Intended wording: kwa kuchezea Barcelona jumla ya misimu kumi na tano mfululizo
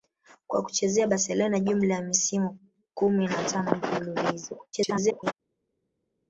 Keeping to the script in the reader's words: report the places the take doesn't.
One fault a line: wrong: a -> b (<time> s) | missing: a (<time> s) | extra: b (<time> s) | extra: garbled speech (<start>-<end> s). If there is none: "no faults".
extra: garbled speech (4.7-5.3 s)